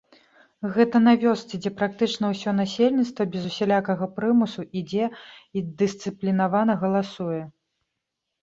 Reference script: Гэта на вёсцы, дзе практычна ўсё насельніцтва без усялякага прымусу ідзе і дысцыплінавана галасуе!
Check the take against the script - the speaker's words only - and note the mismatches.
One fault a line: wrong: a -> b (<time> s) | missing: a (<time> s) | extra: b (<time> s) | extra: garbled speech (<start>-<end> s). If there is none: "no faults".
no faults